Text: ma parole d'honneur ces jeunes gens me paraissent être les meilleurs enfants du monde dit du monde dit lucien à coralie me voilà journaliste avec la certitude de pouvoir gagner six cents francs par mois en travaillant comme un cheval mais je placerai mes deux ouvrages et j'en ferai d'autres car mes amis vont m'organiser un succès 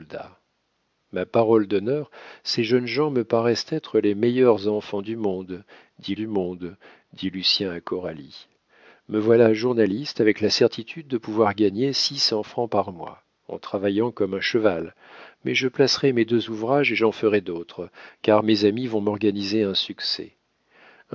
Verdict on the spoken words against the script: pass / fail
pass